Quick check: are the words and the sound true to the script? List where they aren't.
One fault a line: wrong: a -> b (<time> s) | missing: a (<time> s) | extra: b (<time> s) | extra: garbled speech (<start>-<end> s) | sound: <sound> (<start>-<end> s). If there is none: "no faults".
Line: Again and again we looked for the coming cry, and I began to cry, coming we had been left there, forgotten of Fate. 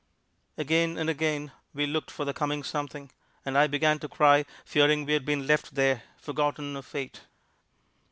wrong: cry -> something (2.6 s)
wrong: coming -> fearing (4.6 s)